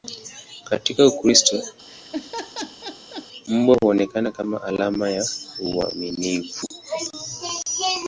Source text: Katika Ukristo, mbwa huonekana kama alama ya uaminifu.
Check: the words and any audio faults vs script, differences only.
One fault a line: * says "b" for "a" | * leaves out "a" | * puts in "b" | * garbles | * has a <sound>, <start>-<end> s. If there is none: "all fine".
* has a laugh, 1.9-3.3 s